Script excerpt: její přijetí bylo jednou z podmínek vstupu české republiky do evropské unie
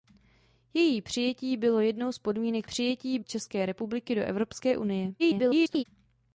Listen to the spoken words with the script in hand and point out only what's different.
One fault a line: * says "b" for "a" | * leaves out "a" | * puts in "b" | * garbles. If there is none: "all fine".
* says "přijetí" for "vstupu"
* garbles